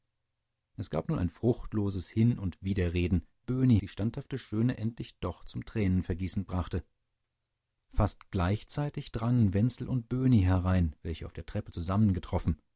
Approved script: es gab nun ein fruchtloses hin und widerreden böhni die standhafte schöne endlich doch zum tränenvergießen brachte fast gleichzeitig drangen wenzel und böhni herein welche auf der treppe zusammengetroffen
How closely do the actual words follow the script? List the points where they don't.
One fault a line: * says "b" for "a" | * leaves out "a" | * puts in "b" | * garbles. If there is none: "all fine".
all fine